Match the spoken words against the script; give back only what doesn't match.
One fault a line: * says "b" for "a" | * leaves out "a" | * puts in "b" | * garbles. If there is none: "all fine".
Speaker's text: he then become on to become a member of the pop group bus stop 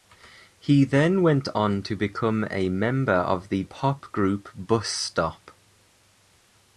* says "went" for "become"